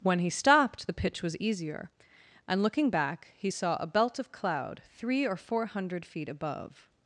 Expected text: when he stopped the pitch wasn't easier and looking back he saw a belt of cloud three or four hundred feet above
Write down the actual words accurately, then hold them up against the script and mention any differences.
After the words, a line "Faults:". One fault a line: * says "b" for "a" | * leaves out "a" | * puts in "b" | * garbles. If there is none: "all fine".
when he stopped the pitch was easier and looking back he saw a belt of cloud three or four hundred feet above
Faults:
* says "was" for "wasn't"